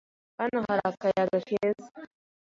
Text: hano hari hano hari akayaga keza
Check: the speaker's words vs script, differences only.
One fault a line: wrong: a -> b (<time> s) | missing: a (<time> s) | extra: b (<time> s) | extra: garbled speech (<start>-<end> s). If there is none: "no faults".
missing: hano hari (0.8 s)